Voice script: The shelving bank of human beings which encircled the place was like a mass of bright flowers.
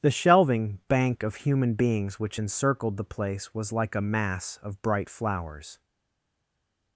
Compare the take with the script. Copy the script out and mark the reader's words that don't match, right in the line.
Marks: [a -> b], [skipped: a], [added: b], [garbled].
The shelving bank of human beings which encircled the place was like a mass of bright flowers.